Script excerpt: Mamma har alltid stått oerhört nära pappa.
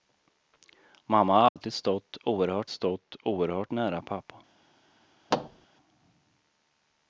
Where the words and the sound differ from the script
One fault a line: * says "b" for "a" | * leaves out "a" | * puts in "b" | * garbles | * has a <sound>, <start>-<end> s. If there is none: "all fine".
* has a dropout, 1.5-1.6 s
* puts in "stått oerhört"
* has a thud, 5.3-5.7 s